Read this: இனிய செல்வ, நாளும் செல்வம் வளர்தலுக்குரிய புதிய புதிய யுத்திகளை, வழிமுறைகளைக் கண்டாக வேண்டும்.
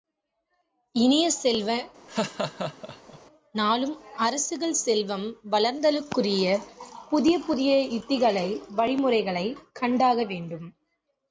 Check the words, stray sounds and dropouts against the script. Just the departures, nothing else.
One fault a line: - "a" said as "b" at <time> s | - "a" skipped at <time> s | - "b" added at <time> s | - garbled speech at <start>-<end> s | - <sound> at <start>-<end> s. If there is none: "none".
- laugh at 2.1-3.2 s
- "அரசுகள்" added at 4.2 s